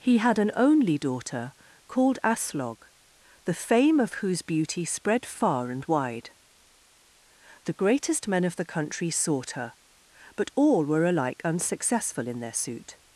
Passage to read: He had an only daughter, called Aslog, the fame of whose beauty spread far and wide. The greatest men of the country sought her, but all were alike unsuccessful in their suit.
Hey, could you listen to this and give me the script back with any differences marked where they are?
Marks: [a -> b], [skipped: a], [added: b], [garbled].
He had an only daughter, called Aslog, the fame of whose beauty spread far and wide. The greatest men of the country sought her, but all were alike unsuccessful in their suit.